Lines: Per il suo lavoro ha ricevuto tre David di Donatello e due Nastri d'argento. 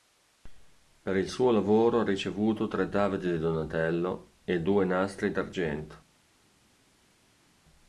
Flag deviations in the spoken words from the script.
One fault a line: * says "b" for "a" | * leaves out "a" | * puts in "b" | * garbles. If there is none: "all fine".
all fine